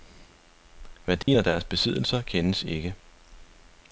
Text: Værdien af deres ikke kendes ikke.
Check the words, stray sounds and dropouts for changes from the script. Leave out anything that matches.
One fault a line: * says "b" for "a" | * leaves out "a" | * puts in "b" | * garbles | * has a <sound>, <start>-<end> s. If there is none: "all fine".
* has a dropout, 1.2-1.3 s
* says "besiddelser" for "ikke"